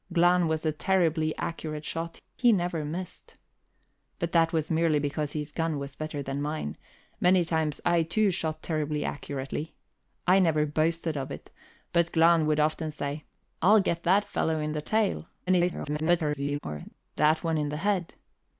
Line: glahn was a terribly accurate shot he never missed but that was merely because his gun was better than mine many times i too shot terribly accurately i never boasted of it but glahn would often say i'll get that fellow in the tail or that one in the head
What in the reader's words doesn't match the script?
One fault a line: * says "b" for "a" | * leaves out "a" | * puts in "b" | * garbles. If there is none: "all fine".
* garbles